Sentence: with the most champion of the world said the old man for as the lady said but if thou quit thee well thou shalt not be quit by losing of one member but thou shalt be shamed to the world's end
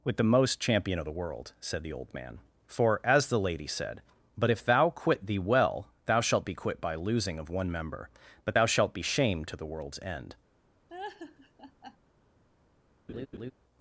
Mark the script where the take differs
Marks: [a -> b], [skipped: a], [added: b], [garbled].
with the most champion of the world said the old man for as the lady said but if thou quit thee well thou shalt [skipped: not] be quit by losing of one member but thou shalt be shamed to the world's end